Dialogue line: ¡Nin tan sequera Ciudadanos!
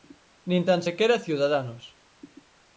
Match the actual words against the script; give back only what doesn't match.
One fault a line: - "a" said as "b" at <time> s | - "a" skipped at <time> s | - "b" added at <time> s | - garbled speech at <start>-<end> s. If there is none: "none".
none